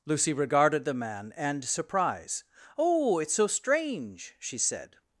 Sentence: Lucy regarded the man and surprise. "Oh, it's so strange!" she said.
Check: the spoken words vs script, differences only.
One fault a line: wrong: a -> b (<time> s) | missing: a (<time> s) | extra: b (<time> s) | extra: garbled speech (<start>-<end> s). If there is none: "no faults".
no faults